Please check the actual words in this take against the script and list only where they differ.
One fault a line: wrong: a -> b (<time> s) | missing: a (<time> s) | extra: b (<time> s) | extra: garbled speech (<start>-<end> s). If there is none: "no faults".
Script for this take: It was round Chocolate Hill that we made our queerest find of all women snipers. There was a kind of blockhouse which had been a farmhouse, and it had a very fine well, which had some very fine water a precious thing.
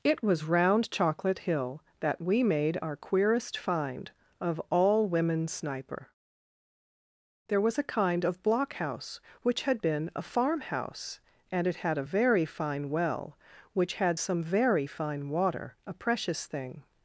wrong: snipers -> sniper (5.5 s)